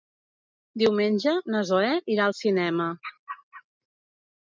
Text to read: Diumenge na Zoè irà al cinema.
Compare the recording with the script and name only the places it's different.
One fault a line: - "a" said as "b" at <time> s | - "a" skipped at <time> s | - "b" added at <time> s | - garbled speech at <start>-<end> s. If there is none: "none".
none